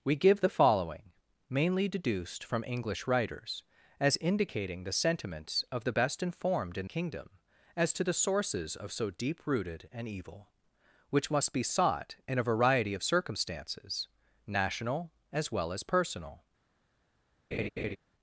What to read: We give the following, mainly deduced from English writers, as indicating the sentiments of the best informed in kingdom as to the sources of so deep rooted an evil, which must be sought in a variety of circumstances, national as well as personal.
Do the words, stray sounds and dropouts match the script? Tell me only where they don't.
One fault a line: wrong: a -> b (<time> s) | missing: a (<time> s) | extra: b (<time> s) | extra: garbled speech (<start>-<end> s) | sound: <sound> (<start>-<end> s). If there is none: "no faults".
sound: laugh (17.5-18.0 s)